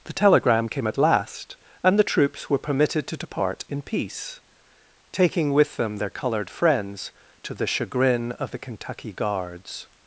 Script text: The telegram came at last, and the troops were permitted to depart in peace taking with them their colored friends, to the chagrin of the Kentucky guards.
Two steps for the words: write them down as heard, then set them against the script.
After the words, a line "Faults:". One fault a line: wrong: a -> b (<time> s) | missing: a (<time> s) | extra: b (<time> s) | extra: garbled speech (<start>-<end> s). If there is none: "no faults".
The telegram came at last, and the troops were permitted to depart in peace taking with them their colored friends, to the chagrin of the Kentucky guards.
Faults:
no faults